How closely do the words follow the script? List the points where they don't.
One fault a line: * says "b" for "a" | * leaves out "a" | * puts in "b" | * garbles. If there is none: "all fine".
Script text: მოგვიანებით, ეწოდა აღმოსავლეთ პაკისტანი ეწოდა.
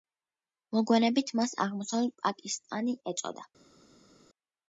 * says "მას" for "ეწოდა"